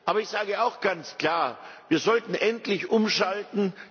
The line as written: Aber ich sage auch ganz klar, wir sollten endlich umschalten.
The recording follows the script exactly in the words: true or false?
true